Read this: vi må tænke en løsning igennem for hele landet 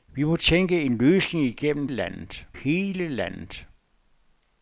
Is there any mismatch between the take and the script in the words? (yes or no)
yes